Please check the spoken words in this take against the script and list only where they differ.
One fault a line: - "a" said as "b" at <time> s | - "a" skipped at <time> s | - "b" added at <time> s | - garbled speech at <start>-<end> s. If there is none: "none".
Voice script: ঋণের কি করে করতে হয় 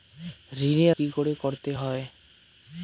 none